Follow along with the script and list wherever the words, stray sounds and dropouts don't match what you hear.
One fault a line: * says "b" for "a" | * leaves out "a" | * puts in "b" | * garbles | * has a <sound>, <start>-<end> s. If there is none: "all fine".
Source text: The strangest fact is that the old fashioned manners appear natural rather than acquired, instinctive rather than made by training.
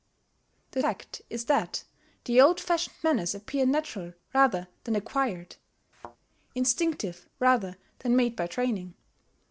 * leaves out "strangest"
* has a thud, 5.9-6.2 s